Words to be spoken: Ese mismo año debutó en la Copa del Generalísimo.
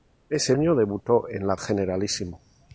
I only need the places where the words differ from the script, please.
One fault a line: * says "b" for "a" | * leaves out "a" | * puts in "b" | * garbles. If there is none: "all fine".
* leaves out "mismo"
* leaves out "Copa del"